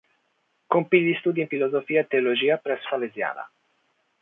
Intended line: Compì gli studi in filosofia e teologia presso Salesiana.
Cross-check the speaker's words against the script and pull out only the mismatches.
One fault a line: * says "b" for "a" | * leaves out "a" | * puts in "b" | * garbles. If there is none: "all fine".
all fine